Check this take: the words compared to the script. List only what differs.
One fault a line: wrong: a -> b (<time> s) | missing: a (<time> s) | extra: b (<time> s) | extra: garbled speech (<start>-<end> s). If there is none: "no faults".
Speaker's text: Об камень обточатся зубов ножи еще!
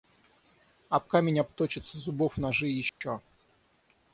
no faults